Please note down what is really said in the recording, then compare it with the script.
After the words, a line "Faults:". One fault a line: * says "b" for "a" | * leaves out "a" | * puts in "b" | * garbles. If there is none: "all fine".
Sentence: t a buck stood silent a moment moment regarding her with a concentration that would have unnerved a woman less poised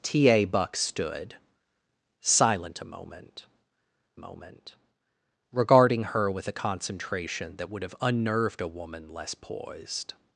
t a buck stood silent a moment moment regarding her with a concentration that would have unnerved a woman less poised
Faults:
all fine